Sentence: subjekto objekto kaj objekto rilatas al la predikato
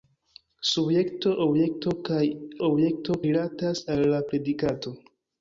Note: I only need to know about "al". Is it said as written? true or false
true